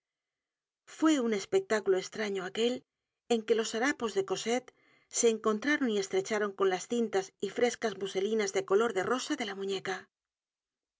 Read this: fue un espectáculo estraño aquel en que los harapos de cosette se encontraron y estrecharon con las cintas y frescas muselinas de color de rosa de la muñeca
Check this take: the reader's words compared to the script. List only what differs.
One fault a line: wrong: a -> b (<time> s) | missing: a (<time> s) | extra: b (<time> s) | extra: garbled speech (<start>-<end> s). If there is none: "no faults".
no faults